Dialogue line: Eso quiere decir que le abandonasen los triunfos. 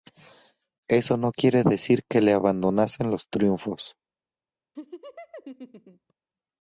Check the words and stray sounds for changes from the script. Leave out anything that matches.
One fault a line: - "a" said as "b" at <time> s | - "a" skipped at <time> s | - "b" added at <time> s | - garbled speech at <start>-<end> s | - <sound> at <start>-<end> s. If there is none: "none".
- "no" added at 1.2 s
- laugh at 4.8-6.1 s